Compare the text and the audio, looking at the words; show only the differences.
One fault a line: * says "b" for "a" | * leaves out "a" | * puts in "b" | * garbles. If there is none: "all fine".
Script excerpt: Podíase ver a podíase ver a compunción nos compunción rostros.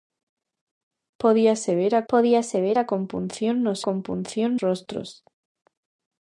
all fine